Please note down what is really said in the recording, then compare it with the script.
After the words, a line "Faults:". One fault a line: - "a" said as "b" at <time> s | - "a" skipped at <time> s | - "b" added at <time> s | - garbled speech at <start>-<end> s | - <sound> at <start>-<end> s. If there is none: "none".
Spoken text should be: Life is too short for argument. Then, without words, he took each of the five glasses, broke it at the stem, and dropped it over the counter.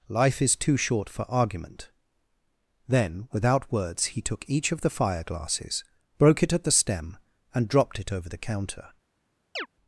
Life is too short for argument. Then, without words, he took each of the fire glasses, broke it at the stem, and dropped it over the counter.
Faults:
- "five" said as "fire" at 4.9 s
- chirp at 9.6-9.7 s